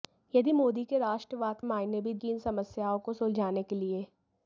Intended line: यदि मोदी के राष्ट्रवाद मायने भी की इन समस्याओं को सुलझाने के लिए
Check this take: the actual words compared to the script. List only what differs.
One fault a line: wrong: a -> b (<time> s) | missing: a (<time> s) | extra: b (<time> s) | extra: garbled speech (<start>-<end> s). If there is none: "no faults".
no faults